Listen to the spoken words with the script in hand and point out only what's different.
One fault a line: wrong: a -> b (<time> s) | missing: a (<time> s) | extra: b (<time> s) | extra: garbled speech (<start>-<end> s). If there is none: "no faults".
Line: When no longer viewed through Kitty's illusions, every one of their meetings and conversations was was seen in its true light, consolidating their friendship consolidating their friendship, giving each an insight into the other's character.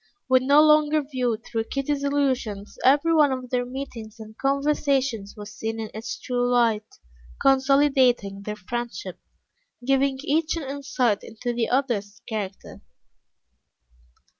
missing: was (5.5 s)
missing: consolidating their friendship (9.2 s)